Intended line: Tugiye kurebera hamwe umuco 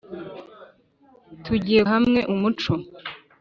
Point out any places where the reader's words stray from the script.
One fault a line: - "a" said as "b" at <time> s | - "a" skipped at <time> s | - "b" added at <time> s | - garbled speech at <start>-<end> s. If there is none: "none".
- "kurebera" skipped at 1.8 s